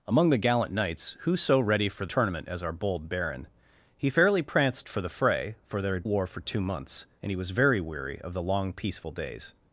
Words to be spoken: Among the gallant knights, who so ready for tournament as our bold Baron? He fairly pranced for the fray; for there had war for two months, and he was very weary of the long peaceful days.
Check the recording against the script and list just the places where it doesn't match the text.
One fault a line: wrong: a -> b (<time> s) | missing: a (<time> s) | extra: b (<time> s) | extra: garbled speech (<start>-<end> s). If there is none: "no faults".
no faults